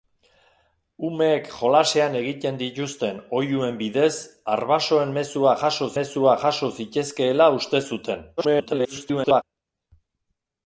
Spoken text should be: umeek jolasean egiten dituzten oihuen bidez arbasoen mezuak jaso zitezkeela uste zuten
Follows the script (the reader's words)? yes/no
no